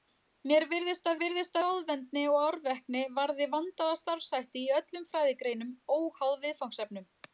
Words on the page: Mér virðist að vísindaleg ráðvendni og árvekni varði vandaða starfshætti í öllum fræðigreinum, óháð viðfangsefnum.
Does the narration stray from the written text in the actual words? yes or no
yes